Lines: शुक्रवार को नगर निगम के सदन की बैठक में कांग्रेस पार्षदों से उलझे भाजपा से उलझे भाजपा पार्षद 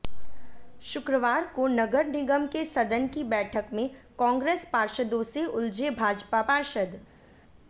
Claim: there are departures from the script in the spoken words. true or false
true